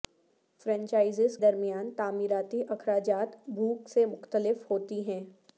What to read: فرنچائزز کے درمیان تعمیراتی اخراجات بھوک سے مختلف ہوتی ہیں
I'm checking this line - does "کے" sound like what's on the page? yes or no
no